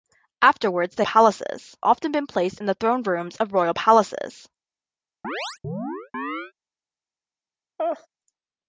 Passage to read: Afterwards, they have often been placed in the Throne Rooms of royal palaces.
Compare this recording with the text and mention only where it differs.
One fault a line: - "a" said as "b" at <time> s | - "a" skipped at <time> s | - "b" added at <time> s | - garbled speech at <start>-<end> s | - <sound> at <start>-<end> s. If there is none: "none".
- "have" said as "palaces" at 1.0 s
- chirp at 5.2-6.5 s
- laugh at 7.8-8.1 s